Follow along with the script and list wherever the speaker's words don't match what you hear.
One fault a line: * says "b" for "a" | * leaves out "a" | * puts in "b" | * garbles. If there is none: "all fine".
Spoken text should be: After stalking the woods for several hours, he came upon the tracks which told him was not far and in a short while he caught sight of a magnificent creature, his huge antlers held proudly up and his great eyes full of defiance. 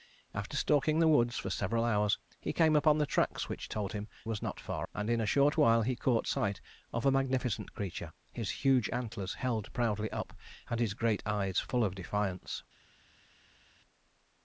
all fine